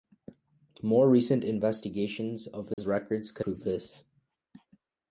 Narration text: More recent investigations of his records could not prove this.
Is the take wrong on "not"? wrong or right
wrong